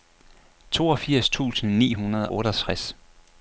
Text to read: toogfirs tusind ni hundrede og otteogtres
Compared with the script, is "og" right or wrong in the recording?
wrong